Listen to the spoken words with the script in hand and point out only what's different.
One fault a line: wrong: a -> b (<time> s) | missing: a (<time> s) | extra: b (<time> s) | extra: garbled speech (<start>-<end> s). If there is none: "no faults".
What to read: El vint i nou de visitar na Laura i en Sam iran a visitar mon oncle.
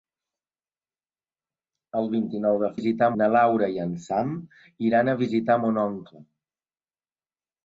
no faults